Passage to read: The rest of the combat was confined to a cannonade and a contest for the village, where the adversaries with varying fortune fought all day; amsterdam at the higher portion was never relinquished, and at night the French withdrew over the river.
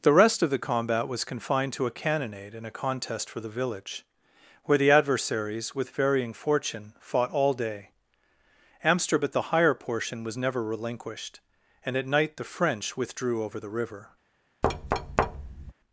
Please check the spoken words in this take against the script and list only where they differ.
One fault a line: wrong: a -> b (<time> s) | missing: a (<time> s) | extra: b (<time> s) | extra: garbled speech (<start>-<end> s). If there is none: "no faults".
no faults